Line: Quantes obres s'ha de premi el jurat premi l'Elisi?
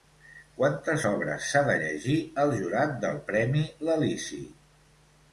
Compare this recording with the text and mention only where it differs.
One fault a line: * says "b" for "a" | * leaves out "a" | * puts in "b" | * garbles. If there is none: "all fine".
* says "llegir" for "premi"
* puts in "del"